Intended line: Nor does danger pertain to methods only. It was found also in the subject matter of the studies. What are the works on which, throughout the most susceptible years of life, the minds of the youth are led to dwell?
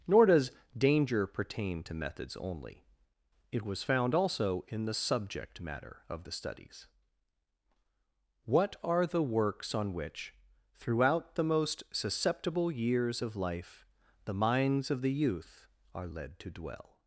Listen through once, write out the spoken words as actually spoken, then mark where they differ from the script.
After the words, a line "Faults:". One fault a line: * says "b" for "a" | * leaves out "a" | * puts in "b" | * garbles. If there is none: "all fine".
Nor does danger pertain to methods only. It was found also in the subject matter of the studies. What are the works on which, throughout the most susceptible years of life, the minds of the youth are led to dwell?
Faults:
all fine